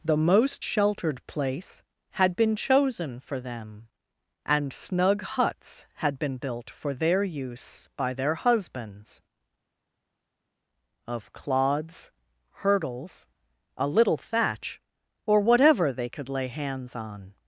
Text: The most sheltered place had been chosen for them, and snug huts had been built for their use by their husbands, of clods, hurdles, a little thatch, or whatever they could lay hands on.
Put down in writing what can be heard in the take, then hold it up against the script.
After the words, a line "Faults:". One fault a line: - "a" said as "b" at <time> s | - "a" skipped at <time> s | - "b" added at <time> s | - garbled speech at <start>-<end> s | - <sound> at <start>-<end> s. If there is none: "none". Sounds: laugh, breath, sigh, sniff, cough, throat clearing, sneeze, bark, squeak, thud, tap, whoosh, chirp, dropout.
The most sheltered place had been chosen for them, and snug huts had been built for their use by their husbands, of clods, hurdles, a little thatch, or whatever they could lay hands on.
Faults:
none